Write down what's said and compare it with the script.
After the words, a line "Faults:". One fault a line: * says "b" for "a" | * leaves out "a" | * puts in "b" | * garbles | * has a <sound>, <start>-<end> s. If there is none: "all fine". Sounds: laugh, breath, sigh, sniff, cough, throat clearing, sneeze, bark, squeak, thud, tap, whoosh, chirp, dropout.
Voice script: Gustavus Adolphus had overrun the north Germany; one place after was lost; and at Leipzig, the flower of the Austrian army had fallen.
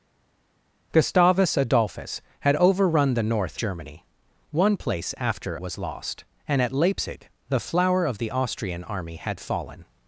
Gustavus Adolphus had overrun the north Germany; one place after was lost; and at Leipzig, the flower of the Austrian army had fallen.
Faults:
all fine